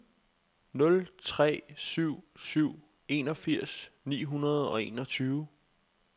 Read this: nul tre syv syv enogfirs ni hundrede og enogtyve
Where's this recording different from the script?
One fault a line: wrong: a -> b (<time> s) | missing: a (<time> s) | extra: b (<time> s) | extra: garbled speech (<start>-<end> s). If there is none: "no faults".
no faults